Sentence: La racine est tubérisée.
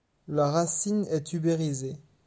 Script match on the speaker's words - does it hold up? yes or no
yes